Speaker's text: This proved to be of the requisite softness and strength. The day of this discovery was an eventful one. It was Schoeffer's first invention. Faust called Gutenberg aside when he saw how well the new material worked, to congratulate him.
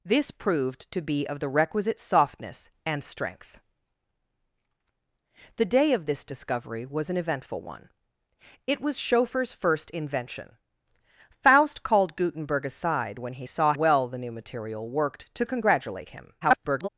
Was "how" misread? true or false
true